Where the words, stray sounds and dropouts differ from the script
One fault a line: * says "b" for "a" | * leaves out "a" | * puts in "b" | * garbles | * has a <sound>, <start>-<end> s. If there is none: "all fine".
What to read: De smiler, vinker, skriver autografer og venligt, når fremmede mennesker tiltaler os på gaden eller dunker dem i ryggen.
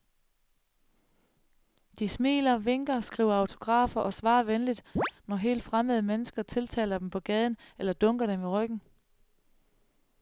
* puts in "svarer"
* has a chirp, 5.0-5.1 s
* puts in "helt"
* says "dem" for "os"